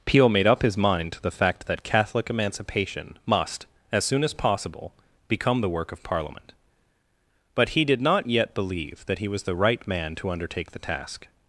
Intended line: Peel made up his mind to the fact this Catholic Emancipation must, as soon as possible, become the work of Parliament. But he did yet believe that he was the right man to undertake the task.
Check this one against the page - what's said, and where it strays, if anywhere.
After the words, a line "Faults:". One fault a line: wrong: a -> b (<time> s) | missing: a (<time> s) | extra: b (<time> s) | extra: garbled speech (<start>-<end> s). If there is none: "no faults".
Peel made up his mind to the fact that Catholic Emancipation must, as soon as possible, become the work of Parliament. But he did not yet believe that he was the right man to undertake the task.
Faults:
wrong: this -> that (1.7 s)
extra: not (8.0 s)